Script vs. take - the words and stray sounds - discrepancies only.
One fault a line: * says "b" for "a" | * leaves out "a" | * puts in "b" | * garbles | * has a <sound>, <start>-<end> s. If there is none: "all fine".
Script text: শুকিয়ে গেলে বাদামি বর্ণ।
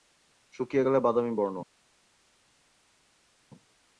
all fine